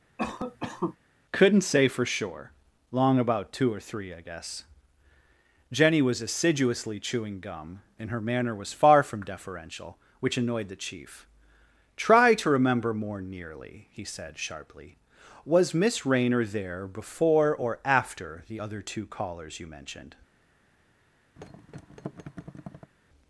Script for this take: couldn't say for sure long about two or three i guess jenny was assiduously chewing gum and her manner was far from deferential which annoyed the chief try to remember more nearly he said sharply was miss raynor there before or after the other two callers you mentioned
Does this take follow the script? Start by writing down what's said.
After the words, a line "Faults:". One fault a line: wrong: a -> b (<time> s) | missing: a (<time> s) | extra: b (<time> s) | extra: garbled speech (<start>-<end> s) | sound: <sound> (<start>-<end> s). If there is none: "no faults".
couldn't say for sure long about two or three i guess jenny was assiduously chewing gum and her manner was far from deferential which annoyed the chief try to remember more nearly he said sharply was miss raynor there before or after the other two callers you mentioned
Faults:
sound: cough (0.2-1.0 s)
sound: thud (21.4-22.9 s)